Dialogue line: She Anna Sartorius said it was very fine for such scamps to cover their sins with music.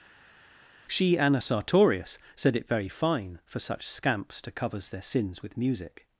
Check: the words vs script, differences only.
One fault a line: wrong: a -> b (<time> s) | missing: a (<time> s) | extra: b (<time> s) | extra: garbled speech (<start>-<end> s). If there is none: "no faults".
missing: was (2.7 s)
wrong: cover -> covers (4.5 s)